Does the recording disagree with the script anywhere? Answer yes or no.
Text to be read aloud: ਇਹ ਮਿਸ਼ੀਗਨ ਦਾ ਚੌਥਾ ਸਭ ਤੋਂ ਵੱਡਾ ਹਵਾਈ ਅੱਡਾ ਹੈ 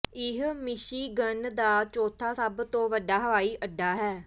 no